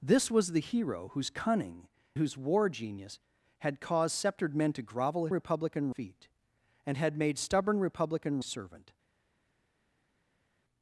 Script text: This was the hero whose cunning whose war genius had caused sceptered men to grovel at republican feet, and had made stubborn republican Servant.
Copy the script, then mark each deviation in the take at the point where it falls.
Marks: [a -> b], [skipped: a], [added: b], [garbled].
This was the hero whose cunning whose war genius had caused sceptered men to grovel at republican feet, and had made stubborn republican Servant.